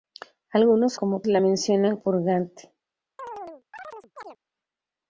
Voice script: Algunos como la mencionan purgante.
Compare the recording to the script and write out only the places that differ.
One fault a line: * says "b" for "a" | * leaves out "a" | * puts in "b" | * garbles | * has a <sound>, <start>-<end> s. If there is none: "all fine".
* has a chirp, 3.2-4.4 s